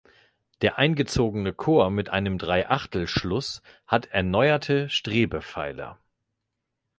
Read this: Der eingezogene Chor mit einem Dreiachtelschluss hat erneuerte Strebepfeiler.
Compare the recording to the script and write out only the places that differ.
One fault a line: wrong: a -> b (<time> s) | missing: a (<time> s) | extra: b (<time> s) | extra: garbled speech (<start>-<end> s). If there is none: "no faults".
no faults